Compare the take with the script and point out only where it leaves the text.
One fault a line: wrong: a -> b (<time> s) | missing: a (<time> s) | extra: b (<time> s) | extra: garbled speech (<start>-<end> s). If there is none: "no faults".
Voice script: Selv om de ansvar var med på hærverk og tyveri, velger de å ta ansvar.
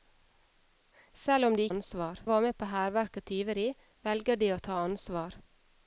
no faults